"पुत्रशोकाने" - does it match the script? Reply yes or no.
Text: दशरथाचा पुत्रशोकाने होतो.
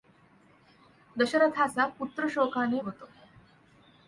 yes